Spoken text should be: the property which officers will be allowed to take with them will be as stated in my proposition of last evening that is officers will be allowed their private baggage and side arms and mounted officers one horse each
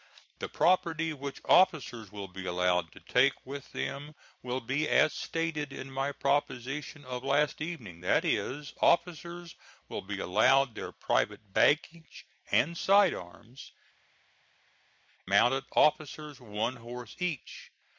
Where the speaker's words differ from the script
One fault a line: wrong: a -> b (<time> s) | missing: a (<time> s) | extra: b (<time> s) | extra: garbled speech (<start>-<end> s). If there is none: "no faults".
missing: and (13.7 s)